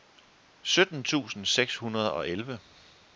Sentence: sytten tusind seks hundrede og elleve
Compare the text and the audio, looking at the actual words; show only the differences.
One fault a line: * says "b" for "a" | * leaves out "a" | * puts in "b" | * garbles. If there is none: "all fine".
all fine